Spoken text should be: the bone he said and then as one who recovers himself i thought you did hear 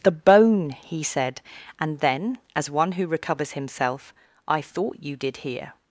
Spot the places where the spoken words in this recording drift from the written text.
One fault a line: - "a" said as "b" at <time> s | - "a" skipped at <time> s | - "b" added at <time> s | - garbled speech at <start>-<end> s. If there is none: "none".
none